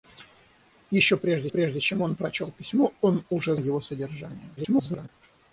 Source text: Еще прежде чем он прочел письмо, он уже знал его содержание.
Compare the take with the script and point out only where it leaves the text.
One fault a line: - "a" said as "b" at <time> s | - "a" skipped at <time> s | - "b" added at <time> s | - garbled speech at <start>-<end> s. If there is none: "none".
- "прежде" added at 1.5 s
- "знал" skipped at 3.6 s
- garbled speech at 4.6-5.1 s